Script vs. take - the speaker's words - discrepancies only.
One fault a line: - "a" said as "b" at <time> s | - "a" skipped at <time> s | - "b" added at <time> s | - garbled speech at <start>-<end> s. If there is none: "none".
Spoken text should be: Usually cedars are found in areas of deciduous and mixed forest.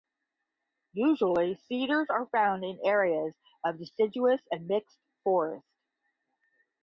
none